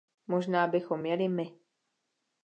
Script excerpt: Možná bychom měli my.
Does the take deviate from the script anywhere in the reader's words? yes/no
no